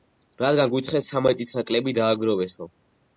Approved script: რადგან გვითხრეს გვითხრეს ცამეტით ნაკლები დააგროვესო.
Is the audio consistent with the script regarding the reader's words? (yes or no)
no